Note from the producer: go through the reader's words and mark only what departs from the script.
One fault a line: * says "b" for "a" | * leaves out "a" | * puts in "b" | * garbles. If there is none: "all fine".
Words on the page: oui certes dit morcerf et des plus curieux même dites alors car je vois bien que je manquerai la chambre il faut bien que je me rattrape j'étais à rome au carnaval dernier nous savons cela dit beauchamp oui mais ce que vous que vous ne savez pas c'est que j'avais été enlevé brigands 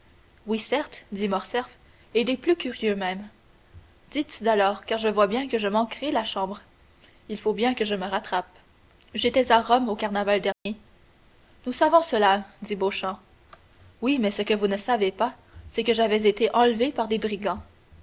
* leaves out "que vous"
* puts in "par des"